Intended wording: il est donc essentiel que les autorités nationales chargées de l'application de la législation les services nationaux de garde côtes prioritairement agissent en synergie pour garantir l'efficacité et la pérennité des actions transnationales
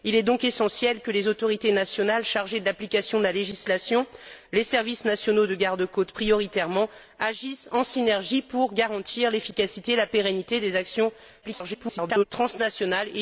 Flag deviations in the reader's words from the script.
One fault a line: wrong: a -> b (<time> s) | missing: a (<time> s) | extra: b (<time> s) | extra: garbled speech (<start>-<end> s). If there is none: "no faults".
extra: garbled speech (11.4-12.2 s)